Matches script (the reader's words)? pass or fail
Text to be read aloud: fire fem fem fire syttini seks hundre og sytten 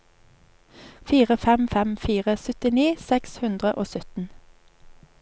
pass